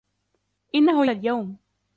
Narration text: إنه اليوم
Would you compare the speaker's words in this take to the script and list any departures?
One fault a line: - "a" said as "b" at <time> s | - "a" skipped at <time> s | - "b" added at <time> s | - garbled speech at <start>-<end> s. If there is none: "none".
none